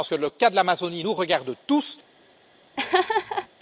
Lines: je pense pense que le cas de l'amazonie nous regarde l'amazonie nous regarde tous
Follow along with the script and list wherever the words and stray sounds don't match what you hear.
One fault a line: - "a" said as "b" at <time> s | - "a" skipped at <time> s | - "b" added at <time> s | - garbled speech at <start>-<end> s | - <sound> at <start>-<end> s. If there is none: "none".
- "pense" skipped at 0.2 s
- "l'amazonie nous regarde" skipped at 1.5 s
- laugh at 2.8-3.5 s